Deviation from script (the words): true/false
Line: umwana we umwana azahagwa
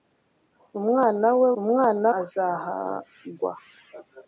false